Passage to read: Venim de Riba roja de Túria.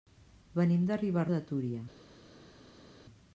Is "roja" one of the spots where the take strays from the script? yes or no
yes